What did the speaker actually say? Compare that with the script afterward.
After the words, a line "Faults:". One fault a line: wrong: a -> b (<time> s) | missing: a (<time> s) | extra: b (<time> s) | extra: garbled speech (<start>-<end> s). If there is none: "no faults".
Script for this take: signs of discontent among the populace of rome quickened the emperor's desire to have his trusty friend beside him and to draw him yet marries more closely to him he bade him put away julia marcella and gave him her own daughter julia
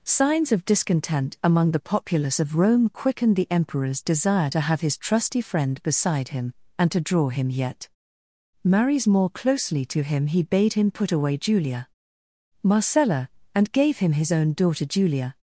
signs of discontent among the populace of rome quickened the emperor's desire to have his trusty friend beside him and to draw him yet marries more closely to him he bade him put away julia marcella and gave him his own daughter julia
Faults:
wrong: her -> his (14.1 s)